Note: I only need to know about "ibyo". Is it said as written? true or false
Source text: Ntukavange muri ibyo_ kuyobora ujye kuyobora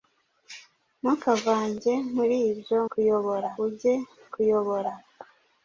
true